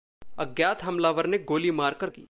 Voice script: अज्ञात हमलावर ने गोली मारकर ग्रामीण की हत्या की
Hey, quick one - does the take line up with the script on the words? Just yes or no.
no